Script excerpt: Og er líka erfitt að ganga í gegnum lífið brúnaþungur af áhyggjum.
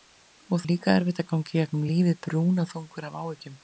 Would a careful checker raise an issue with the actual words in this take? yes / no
no